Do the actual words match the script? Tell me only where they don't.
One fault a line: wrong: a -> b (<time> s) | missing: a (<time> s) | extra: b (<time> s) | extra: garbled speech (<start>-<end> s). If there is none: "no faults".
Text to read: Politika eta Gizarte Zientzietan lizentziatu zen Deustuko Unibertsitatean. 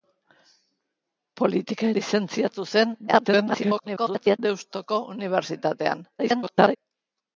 missing: eta Gizarte Zientzietan (1.9 s)
extra: garbled speech (3.1-4.4 s)
extra: garbled speech (6.2-6.8 s)